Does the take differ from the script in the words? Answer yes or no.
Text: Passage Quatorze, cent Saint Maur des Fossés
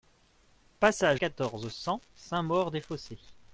no